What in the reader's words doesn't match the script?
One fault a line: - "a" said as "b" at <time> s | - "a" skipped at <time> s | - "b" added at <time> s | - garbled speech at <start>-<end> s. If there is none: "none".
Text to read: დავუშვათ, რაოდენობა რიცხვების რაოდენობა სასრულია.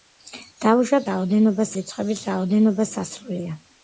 none